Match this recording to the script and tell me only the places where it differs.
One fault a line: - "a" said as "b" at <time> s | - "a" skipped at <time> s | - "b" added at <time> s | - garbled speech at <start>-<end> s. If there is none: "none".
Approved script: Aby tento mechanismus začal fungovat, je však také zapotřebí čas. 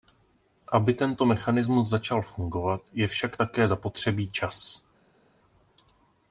none